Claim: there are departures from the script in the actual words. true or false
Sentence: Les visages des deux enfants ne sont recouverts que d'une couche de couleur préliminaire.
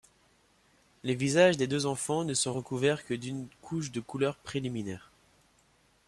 false